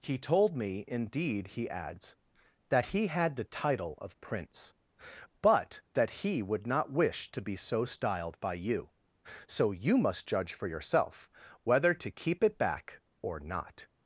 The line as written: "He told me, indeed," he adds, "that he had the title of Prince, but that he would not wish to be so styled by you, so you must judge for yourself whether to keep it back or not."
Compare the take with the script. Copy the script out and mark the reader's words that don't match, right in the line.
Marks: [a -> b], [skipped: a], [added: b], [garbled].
"He told me, indeed," he adds, "that he had the title of Prince, but that he would not wish to be so styled by you, so you must judge for yourself whether to keep it back or not."